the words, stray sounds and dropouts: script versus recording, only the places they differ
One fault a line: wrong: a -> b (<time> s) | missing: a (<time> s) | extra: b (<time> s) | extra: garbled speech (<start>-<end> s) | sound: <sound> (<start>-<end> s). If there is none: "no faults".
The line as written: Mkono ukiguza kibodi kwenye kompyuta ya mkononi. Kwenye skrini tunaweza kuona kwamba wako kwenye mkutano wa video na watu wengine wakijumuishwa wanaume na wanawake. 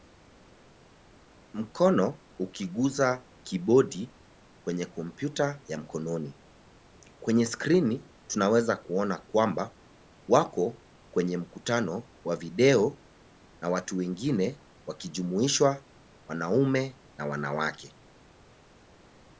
no faults